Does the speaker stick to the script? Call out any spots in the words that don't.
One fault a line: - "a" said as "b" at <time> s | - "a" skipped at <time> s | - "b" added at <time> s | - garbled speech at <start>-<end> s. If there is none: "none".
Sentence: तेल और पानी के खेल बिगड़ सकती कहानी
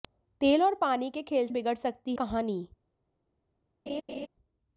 none